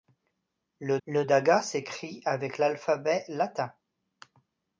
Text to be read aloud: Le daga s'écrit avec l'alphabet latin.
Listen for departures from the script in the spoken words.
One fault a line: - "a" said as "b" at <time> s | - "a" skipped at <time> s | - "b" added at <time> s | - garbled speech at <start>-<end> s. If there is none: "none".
- "le" added at 1.1 s